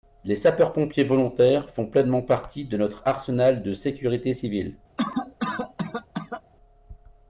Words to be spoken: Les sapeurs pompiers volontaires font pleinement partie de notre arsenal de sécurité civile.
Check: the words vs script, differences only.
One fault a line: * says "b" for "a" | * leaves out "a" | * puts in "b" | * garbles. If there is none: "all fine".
all fine